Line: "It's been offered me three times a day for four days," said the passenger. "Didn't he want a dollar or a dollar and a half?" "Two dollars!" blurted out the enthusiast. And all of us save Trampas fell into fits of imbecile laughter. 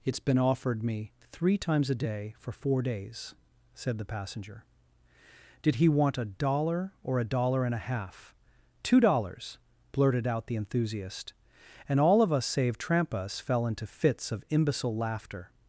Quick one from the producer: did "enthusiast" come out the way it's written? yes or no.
yes